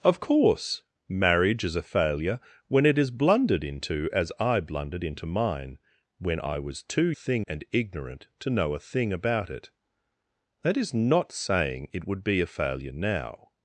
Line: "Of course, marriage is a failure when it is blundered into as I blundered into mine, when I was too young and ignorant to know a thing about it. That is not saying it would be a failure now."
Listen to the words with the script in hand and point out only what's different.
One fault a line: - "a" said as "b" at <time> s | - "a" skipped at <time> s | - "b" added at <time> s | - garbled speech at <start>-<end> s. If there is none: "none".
- "young" said as "thing" at 7.1 s